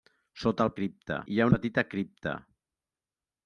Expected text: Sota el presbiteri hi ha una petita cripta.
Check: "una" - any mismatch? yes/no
yes